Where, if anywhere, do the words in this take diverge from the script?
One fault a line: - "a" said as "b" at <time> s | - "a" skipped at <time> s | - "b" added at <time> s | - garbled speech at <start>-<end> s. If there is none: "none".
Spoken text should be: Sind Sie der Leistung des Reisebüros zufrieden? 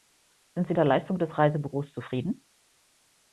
none